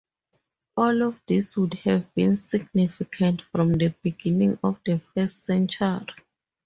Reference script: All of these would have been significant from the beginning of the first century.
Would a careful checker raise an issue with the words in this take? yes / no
no